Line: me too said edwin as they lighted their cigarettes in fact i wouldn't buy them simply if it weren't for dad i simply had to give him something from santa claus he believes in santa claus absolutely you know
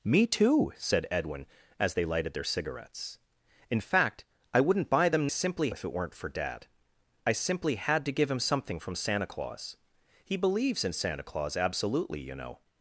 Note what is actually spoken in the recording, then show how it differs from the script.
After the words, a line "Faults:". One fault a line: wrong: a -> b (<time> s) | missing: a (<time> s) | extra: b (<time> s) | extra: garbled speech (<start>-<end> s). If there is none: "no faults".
me too said edwin as they lighted their cigarettes in fact i wouldn't buy them simply if it weren't for dad i simply had to give him something from santa claus he believes in santa claus absolutely you know
Faults:
no faults